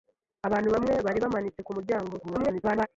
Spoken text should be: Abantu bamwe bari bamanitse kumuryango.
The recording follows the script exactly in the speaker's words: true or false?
false